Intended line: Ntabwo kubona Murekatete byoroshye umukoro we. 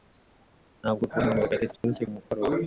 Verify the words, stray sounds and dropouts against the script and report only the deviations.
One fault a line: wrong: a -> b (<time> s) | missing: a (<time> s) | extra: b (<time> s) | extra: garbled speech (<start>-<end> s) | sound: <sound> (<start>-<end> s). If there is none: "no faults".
sound: dropout (1.8-1.8 s)